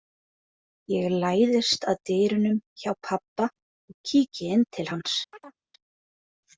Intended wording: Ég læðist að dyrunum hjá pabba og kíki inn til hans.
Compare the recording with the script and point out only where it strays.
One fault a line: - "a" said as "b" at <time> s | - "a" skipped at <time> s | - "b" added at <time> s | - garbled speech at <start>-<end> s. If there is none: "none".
none